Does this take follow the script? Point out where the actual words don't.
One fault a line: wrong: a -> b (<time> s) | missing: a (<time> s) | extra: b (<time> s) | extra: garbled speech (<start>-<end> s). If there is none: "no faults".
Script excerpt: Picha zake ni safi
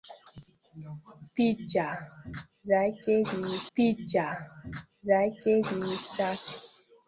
extra: picha zake ni (3.7 s)